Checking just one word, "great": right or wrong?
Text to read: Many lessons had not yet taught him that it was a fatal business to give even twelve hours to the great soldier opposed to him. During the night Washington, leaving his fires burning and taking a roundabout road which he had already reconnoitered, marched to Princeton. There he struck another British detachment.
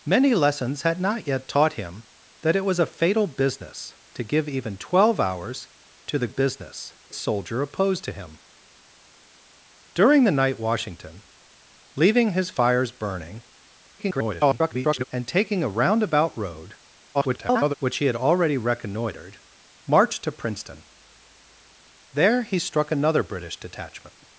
wrong